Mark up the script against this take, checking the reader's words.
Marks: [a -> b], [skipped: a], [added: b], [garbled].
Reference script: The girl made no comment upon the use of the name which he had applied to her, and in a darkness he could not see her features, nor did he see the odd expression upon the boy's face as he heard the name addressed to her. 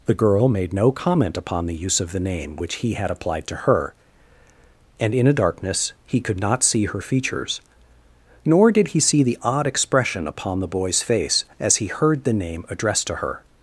The girl made no comment upon the use of the name which he had applied to her, and in a darkness he could not see her features, nor did he see the odd expression upon the boy's face as he heard the name addressed to her.